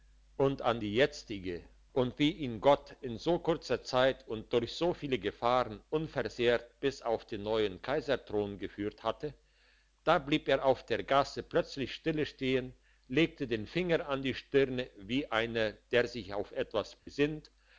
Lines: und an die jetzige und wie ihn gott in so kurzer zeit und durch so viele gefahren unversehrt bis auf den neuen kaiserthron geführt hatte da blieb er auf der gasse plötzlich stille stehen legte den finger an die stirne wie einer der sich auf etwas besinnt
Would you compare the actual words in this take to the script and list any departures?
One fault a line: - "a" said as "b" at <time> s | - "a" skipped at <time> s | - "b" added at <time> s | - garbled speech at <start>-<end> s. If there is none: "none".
none